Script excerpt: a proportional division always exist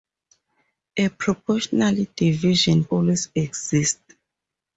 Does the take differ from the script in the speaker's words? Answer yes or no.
no